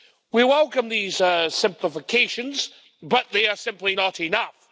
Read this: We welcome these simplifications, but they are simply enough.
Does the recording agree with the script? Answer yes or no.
no